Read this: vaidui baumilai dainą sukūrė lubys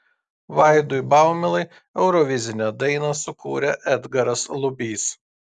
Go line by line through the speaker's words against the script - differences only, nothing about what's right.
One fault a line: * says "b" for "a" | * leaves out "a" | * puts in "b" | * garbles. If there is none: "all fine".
* puts in "eurovizinę"
* puts in "edgaras"